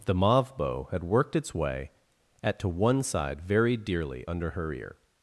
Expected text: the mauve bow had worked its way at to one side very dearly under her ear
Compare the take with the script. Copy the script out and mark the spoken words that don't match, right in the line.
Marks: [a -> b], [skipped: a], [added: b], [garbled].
the mauve bow had worked its way at to one side very dearly under her ear